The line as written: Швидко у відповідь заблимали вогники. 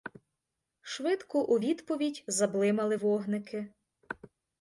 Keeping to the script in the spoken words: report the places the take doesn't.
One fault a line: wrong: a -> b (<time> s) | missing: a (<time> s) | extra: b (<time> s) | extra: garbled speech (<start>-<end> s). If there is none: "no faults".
no faults